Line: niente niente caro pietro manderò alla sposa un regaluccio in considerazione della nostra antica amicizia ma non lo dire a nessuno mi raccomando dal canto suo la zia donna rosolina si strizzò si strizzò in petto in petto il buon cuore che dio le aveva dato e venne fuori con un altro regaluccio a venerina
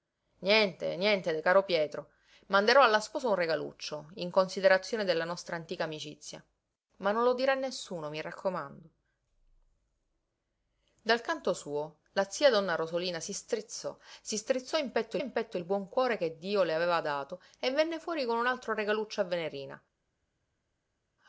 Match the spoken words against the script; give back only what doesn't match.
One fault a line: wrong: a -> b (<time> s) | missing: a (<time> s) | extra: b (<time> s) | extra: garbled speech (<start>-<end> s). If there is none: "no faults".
no faults